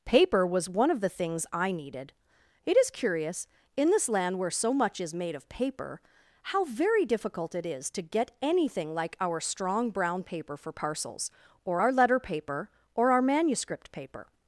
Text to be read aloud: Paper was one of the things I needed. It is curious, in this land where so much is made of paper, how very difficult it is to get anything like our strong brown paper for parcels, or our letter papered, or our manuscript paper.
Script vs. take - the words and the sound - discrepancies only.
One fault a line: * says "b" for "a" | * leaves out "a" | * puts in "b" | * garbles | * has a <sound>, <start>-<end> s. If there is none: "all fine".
* says "paper" for "papered"